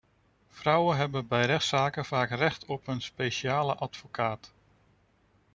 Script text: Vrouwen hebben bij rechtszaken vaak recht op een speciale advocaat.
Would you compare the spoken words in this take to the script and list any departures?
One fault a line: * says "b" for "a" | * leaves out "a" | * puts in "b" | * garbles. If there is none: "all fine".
all fine